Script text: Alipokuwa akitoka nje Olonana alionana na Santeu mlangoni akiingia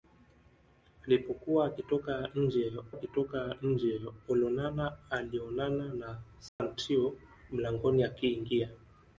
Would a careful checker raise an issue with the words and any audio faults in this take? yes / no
yes